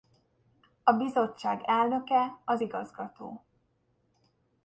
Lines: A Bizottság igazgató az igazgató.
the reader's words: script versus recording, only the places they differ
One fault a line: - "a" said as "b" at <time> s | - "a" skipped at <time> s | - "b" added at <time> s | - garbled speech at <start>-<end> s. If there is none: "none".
- "igazgató" said as "elnöke" at 1.6 s